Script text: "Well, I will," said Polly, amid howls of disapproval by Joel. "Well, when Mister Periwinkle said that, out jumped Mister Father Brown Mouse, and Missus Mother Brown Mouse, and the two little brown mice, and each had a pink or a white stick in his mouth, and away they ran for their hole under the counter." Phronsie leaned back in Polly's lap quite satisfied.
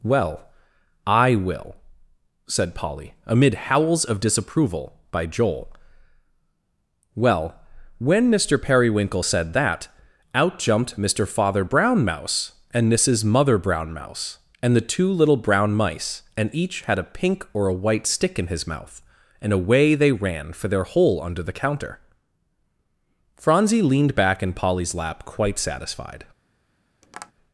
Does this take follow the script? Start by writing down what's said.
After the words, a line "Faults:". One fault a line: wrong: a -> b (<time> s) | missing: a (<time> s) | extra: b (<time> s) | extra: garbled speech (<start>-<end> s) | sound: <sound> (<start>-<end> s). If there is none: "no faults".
"Well, I will," said Polly, amid howls of disapproval by Joel. "Well, when Mister Periwinkle said that, out jumped Mister Father Brown Mouse, and Missus Mother Brown Mouse, and the two little brown mice, and each had a pink or a white stick in his mouth, and away they ran for their hole under the counter." Phronsie leaned back in Polly's lap quite satisfied.
Faults:
sound: tap (27.0-27.3 s)